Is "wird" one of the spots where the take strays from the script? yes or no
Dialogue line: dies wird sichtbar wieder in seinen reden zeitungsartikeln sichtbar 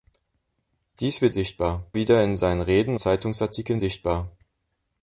no